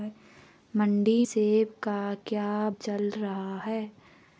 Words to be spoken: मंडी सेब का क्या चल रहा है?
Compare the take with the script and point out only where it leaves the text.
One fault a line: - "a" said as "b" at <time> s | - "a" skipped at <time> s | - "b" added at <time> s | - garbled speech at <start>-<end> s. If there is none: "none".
none